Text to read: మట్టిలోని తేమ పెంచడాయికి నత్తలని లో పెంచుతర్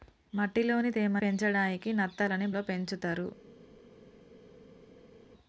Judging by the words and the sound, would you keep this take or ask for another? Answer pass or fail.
pass